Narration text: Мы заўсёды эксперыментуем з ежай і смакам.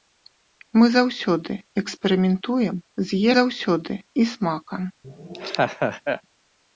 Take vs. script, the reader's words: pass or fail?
fail